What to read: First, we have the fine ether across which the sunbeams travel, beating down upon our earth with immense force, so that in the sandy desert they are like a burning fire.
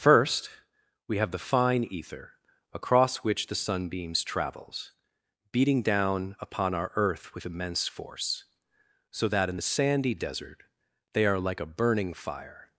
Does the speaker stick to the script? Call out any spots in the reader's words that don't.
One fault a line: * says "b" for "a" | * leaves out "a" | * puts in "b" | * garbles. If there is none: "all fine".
* says "travels" for "travel"